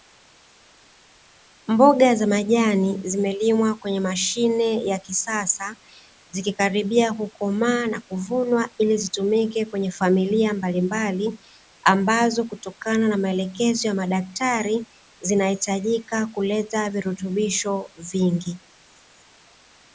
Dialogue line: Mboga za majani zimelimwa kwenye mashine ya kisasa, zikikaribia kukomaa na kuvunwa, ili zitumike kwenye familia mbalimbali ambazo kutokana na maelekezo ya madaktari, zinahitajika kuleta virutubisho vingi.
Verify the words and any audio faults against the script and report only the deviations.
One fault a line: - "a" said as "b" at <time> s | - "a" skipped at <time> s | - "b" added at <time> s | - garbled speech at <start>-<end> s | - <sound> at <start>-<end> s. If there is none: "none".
none